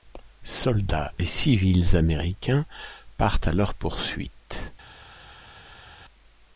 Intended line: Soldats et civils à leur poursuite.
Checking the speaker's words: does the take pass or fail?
fail